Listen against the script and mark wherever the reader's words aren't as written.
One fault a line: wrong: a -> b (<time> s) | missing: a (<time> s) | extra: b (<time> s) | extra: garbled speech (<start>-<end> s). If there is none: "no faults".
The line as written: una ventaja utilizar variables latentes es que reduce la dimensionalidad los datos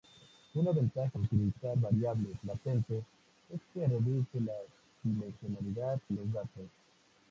no faults